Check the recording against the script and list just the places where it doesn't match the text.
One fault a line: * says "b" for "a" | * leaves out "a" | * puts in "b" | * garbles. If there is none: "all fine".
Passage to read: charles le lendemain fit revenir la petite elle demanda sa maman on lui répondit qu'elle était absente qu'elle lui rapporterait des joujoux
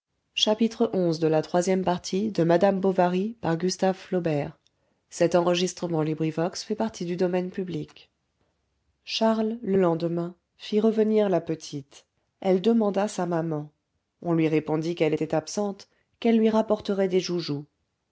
all fine